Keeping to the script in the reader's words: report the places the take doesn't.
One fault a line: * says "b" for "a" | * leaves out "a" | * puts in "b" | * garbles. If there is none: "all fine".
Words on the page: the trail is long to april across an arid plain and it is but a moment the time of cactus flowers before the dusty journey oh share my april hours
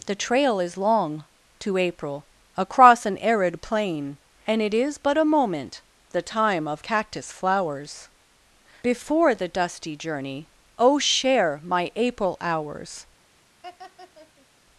all fine